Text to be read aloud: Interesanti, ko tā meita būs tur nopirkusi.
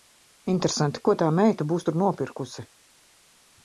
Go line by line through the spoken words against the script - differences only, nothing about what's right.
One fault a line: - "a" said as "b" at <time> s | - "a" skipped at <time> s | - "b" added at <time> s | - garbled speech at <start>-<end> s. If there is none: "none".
none